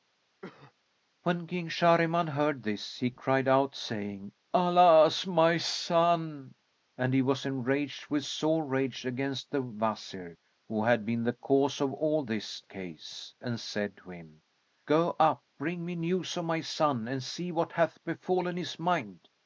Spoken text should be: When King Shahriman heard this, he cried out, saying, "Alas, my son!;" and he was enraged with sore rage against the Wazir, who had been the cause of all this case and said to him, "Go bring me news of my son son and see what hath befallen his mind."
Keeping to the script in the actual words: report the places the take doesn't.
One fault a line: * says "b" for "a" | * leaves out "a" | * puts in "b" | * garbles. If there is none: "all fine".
* puts in "up"
* leaves out "son"